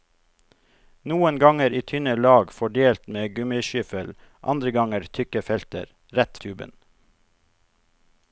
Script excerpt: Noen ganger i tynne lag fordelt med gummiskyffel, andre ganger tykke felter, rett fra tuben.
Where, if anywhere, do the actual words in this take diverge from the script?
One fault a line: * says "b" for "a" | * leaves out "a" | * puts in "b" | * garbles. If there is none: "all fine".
* leaves out "fra"